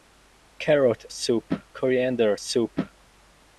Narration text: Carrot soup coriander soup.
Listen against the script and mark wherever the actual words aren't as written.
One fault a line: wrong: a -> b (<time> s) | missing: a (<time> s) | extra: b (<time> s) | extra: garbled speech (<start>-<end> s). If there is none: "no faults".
no faults